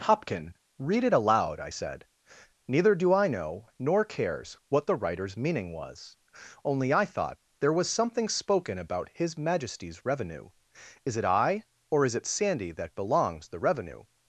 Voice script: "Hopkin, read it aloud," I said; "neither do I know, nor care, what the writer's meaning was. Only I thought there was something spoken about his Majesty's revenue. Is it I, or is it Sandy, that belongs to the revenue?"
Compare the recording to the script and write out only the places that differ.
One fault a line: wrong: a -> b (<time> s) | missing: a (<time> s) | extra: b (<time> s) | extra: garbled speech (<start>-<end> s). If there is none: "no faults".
wrong: care -> cares (4.0 s)
missing: to (13.5 s)